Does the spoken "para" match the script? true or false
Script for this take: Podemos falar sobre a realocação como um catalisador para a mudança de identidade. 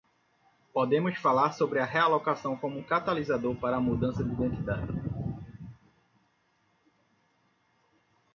true